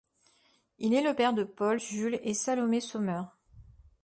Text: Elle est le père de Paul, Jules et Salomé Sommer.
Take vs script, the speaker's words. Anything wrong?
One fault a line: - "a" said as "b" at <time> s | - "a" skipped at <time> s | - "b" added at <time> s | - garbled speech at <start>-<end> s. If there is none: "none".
- "Elle" said as "Il" at 0.8 s